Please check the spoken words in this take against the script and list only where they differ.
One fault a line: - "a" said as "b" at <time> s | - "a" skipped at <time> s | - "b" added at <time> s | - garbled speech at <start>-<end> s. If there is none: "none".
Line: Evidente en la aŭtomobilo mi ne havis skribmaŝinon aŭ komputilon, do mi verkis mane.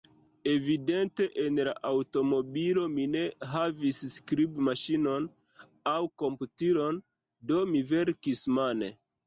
none